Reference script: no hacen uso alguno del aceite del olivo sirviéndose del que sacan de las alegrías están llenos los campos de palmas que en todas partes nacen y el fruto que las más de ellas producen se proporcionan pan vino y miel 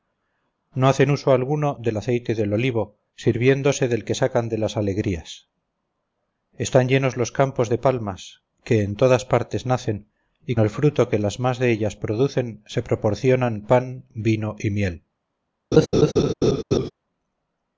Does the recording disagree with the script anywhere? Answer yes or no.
no